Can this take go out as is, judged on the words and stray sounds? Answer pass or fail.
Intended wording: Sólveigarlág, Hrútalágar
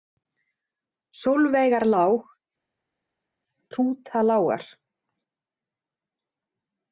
pass